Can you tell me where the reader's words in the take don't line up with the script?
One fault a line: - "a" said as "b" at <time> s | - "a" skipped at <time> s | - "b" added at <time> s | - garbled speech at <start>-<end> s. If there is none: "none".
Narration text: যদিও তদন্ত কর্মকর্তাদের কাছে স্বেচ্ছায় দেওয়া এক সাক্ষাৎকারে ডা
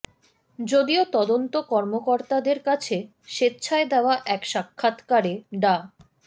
none